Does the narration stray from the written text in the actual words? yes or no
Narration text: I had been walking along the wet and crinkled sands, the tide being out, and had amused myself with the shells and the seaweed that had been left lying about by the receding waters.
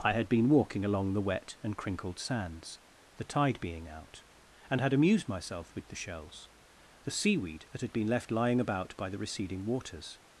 yes